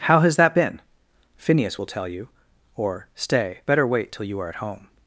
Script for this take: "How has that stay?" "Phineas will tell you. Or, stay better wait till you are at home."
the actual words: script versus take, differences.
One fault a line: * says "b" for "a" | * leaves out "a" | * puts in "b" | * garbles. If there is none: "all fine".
* says "been" for "stay"